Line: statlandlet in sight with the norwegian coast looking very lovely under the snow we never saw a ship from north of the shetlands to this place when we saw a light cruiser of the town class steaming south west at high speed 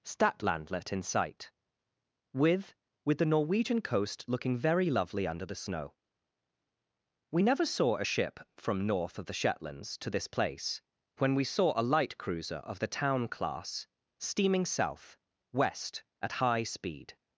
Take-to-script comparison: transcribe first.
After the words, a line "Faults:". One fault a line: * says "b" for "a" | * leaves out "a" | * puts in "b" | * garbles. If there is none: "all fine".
statlandlet in sight with with the norwegian coast looking very lovely under the snow we never saw a ship from north of the shetlands to this place when we saw a light cruiser of the town class steaming south west at high speed
Faults:
* puts in "with"